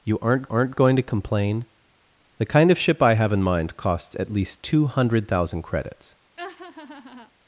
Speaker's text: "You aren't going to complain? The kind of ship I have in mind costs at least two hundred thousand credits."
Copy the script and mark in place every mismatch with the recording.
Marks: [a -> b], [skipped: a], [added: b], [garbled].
"You aren't [added: aren't] going to complain? The kind of ship I have in mind costs at least two hundred thousand credits."